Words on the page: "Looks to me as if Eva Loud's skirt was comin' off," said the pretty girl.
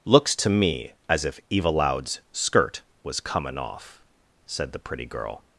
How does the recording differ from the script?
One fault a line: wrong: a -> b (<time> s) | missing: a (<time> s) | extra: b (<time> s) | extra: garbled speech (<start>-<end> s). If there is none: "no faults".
no faults